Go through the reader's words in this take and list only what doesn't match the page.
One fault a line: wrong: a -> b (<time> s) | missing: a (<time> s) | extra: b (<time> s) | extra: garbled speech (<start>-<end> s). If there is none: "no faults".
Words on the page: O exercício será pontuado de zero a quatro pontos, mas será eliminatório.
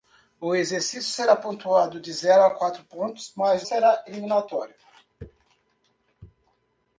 no faults